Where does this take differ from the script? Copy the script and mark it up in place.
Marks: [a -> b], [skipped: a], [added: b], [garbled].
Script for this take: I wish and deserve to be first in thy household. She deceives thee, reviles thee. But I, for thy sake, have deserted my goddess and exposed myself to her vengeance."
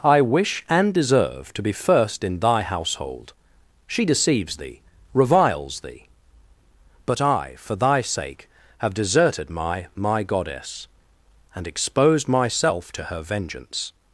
I wish and deserve to be first in thy household. She deceives thee, reviles thee. But I, for thy sake, have deserted my [added: my] goddess and exposed myself to her vengeance."